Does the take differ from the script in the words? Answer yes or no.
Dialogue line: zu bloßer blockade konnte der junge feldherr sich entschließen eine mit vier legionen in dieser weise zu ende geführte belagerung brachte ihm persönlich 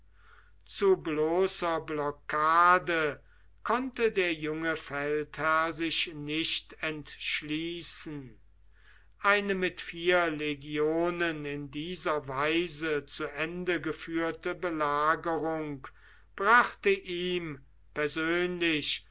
yes